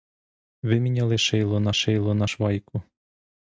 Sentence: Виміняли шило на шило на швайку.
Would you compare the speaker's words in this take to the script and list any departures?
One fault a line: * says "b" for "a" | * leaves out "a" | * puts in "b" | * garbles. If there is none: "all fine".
all fine